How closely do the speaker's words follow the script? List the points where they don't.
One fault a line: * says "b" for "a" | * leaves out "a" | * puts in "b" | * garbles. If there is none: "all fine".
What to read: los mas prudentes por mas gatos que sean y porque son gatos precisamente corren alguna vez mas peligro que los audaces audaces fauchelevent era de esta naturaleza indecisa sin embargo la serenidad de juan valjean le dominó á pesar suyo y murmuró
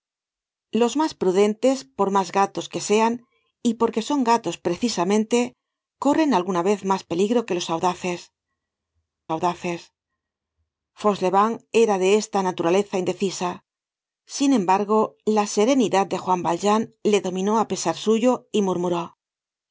all fine